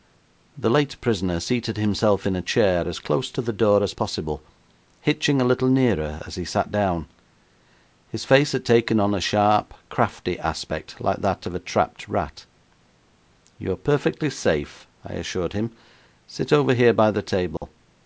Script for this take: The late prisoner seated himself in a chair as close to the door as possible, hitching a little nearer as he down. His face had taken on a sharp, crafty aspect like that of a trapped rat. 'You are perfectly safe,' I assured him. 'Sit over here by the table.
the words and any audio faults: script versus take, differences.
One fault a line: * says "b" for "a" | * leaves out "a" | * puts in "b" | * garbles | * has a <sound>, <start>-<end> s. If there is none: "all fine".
* puts in "sat"
* has a dropout, 17.6-17.6 s